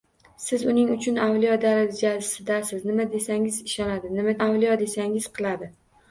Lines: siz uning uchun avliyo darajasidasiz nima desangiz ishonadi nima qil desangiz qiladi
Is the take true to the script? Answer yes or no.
no